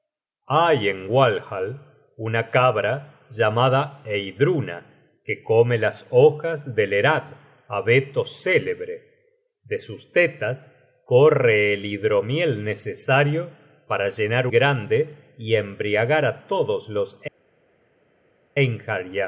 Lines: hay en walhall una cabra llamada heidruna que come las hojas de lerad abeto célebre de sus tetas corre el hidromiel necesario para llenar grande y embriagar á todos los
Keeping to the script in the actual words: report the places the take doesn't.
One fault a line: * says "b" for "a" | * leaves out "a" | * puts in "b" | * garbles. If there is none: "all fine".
all fine